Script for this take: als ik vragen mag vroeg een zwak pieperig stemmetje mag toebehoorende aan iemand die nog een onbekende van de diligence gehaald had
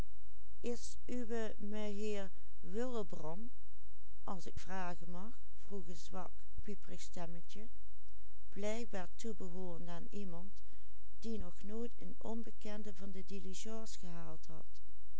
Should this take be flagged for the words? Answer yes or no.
yes